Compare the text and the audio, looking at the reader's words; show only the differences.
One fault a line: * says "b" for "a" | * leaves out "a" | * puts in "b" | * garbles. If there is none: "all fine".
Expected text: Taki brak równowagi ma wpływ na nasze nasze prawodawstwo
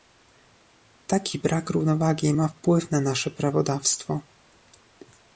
* leaves out "nasze"